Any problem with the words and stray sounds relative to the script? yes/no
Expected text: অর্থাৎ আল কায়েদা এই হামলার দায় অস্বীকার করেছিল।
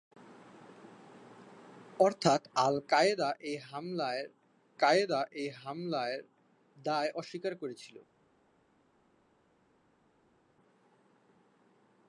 yes